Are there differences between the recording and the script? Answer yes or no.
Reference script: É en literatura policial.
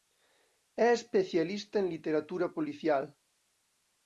yes